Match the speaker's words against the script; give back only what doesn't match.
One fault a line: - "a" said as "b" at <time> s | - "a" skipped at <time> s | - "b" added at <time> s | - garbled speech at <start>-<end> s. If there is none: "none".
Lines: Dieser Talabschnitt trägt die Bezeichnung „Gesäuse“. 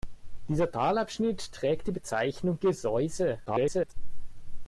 - garbled speech at 3.5-3.9 s